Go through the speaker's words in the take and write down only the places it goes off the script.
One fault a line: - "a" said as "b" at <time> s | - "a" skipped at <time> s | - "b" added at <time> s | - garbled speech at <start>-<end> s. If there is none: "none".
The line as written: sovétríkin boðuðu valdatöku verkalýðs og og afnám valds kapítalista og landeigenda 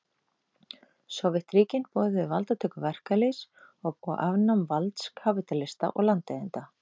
none